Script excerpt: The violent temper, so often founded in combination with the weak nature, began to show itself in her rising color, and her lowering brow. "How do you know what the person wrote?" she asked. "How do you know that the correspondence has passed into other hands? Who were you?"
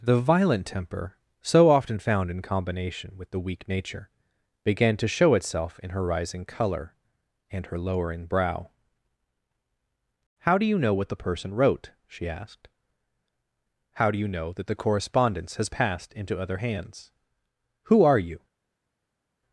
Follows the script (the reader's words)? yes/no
no